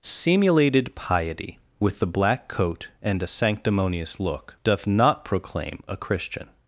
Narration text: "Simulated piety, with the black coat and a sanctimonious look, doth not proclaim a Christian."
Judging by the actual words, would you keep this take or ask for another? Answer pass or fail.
pass